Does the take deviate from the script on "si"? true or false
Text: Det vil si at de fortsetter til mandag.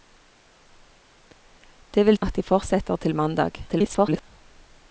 true